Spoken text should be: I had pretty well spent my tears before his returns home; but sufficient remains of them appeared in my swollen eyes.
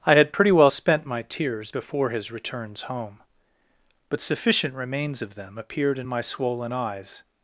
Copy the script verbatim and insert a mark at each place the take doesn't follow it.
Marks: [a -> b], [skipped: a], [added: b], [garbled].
I had pretty well spent my tears before his returns home; but sufficient remains of them appeared in my swollen eyes.